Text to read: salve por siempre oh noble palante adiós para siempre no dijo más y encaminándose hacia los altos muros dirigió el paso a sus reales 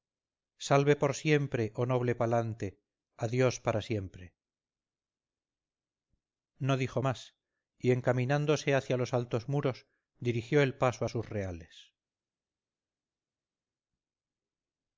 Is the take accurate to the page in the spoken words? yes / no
yes